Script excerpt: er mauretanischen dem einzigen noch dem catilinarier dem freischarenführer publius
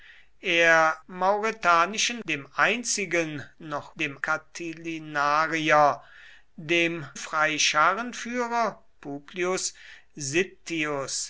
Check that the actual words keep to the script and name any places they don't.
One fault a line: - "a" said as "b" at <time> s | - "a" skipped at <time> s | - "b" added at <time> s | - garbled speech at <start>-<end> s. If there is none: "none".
none